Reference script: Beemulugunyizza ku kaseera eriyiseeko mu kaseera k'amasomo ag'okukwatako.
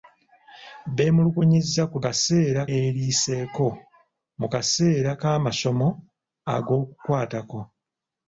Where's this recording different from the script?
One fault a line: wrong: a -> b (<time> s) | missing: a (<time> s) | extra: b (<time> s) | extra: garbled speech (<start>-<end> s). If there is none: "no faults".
no faults